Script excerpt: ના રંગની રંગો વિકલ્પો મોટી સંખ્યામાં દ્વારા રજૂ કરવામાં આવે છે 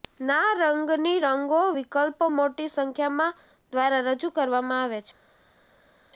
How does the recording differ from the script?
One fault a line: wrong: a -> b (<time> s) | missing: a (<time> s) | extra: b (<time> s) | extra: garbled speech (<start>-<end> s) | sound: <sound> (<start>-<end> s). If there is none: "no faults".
no faults